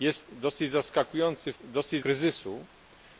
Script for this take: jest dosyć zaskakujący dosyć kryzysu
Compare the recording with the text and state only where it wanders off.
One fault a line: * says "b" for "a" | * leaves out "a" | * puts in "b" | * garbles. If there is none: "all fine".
all fine